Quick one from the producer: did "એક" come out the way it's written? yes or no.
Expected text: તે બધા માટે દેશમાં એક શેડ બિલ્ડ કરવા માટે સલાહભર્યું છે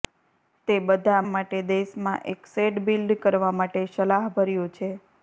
yes